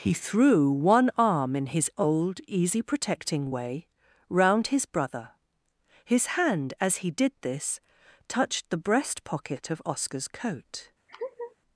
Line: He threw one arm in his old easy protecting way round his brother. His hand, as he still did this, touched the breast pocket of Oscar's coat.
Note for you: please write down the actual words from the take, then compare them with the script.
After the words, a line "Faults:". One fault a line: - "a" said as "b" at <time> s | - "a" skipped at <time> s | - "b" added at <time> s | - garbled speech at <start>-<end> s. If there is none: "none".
He threw one arm in his old easy protecting way round his brother. His hand, as he did this, touched the breast pocket of Oscar's coat.
Faults:
- "still" skipped at 7.1 s